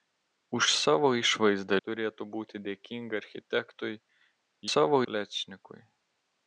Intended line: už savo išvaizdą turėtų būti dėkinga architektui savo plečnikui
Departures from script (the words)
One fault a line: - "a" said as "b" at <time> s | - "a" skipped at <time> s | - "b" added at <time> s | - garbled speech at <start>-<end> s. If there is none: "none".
none